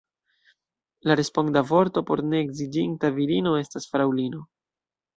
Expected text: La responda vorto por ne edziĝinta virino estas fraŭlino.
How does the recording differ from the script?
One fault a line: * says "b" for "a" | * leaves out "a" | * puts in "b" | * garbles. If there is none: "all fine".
all fine